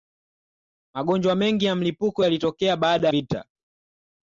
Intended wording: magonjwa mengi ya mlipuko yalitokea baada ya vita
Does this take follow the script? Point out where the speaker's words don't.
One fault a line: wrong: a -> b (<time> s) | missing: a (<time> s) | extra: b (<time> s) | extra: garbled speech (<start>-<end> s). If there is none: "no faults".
missing: ya (3.1 s)